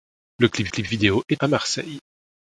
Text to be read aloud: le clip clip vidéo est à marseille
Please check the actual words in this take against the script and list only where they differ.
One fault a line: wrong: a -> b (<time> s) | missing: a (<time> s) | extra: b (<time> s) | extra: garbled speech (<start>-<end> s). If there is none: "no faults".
no faults